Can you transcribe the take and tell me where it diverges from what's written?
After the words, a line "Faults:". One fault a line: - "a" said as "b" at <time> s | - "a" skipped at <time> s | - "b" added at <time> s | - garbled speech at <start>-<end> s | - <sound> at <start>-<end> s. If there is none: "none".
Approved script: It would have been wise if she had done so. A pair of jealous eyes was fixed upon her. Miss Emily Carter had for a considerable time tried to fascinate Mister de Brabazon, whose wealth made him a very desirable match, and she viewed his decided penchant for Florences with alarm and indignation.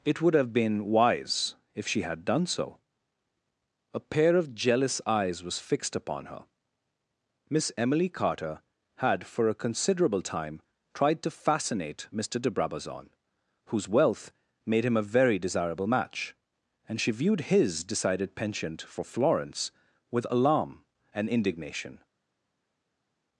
It would have been wise if she had done so. A pair of jealous eyes was fixed upon her. Miss Emily Carter had for a considerable time tried to fascinate Mister de Brabazon, whose wealth made him a very desirable match, and she viewed his decided penchant for Florence with alarm and indignation.
Faults:
- "Florences" said as "Florence" at 19.1 s